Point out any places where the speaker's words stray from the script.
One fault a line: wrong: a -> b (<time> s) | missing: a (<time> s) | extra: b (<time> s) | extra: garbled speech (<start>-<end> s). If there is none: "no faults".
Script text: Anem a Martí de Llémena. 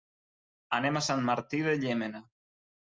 extra: Sant (1.1 s)